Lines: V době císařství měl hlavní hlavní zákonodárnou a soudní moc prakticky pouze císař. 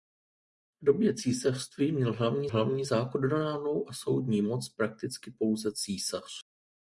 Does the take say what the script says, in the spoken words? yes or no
yes